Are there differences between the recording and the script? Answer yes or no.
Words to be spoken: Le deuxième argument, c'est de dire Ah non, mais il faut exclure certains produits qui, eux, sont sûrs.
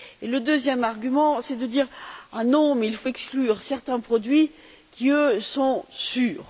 no